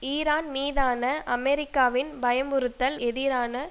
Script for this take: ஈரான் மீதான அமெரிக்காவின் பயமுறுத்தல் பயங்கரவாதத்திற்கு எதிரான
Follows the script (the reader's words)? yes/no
no